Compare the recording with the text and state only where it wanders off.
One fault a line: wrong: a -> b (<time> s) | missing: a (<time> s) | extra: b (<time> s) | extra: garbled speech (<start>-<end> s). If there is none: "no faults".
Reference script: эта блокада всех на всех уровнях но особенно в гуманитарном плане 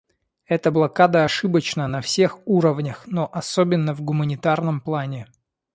wrong: всех -> ошибочна (1.2 s)